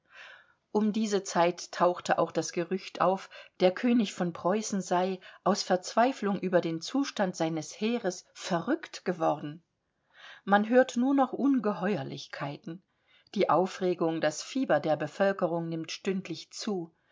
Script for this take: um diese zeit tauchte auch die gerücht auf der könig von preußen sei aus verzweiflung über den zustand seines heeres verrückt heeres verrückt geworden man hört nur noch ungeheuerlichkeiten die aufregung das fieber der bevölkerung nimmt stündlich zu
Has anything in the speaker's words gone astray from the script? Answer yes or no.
yes